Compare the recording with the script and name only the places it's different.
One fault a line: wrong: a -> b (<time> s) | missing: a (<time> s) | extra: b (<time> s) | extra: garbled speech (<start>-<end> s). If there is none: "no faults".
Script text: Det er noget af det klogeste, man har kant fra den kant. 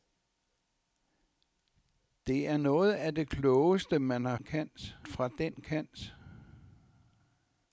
no faults